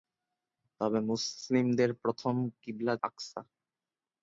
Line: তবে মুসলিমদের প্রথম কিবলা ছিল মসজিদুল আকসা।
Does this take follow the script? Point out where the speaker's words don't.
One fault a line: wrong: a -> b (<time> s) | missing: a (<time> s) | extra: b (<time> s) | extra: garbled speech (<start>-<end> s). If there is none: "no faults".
missing: ছিল মসজিদুল (3.0 s)